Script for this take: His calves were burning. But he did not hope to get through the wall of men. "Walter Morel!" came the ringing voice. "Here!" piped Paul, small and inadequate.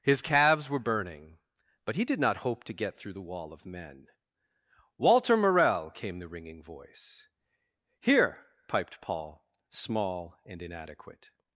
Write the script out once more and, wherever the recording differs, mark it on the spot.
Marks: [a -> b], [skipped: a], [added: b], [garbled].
His calves were burning. But he did not hope to get through the wall of men. "Walter Morel!" came the ringing voice. "Here!" piped Paul, small and inadequate.